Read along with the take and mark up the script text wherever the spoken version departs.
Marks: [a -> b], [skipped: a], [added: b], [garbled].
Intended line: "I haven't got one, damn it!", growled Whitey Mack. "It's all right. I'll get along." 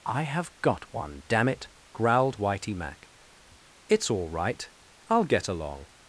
"I [haven't -> have] got one, damn it!", growled Whitey Mack. "It's all right. I'll get along."